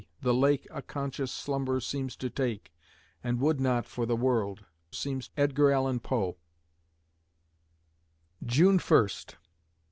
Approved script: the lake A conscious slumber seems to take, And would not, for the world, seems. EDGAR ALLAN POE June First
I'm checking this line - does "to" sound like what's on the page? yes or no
yes